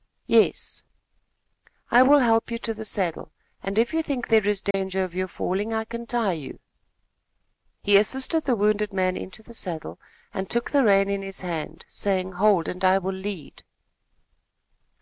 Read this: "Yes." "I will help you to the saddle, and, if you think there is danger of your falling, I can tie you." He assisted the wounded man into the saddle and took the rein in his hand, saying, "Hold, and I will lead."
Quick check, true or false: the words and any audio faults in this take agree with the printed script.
false